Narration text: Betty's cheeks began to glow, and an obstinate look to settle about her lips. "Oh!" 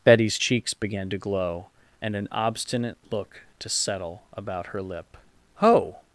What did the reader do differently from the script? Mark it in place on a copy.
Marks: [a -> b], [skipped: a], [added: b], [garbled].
Betty's cheeks began to glow, and an obstinate look to settle about her [lips. -> lip] "Oh!"